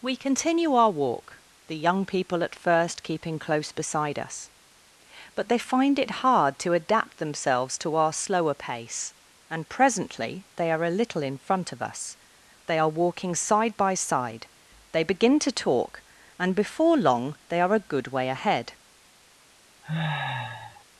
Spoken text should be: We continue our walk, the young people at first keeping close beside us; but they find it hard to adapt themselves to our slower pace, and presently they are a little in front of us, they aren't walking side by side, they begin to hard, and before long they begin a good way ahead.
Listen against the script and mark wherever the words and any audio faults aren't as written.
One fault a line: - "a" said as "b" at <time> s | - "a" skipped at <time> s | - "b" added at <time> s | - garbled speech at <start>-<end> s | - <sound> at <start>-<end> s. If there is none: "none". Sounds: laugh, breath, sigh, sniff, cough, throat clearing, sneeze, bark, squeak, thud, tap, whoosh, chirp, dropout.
- "aren't" said as "are" at 12.8 s
- "hard" said as "talk" at 15.5 s
- "begin" said as "are" at 17.6 s
- sniff at 19.8-20.8 s